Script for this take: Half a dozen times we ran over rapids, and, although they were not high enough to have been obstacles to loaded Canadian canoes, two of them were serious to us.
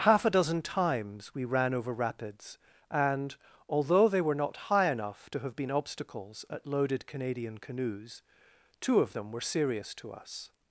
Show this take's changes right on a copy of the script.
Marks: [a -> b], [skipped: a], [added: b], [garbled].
Half a dozen times we ran over rapids, and, although they were not high enough to have been obstacles [to -> at] loaded Canadian canoes, two of them were serious to us.